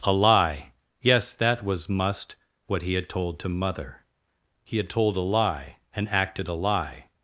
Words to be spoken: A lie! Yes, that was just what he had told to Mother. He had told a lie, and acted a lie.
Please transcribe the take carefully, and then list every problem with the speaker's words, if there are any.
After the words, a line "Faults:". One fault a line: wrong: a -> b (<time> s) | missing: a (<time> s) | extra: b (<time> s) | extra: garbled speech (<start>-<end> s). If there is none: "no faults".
A lie! Yes, that was must what he had told to Mother. He had told a lie, and acted a lie.
Faults:
wrong: just -> must (1.9 s)